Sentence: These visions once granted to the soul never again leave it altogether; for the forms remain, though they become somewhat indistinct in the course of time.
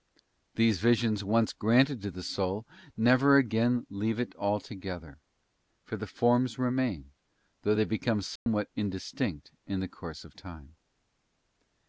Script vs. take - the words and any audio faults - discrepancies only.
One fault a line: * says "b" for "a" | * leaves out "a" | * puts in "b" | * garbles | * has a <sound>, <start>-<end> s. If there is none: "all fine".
* has a dropout, 8.4-8.5 s